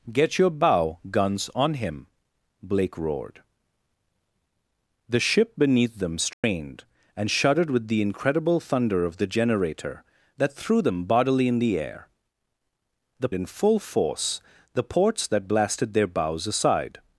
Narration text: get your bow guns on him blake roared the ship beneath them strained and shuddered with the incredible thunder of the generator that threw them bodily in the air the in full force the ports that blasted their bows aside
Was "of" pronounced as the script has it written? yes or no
yes